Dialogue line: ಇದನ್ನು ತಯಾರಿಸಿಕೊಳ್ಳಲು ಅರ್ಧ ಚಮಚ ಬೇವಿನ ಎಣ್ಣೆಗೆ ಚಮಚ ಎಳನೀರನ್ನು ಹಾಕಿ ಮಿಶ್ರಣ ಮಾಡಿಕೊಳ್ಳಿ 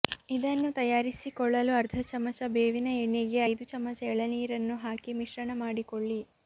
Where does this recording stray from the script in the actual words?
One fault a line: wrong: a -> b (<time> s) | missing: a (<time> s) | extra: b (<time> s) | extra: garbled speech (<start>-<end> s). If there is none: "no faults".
extra: ಐದು (3.5 s)